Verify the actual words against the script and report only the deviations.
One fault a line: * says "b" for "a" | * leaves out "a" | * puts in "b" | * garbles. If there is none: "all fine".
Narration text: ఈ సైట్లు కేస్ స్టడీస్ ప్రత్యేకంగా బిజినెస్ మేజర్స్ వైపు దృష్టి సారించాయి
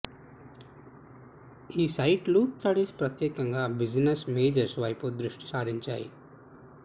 * leaves out "కేస్"